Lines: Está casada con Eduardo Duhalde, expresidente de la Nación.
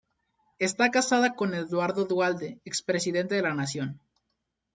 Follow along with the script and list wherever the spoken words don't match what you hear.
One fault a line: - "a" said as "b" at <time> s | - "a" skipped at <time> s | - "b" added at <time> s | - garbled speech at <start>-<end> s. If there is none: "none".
none